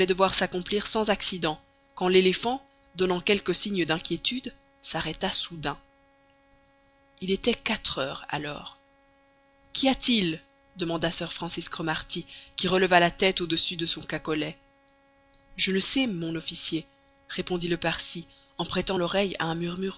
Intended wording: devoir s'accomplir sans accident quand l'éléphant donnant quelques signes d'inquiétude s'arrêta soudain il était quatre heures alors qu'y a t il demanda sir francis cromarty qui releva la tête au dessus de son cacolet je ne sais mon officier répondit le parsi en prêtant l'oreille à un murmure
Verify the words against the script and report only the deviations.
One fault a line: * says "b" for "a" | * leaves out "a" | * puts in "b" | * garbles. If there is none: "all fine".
all fine